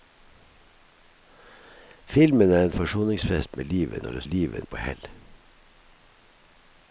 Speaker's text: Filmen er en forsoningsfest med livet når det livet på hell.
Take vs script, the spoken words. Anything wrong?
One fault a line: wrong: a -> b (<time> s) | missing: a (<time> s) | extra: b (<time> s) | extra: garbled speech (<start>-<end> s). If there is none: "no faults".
no faults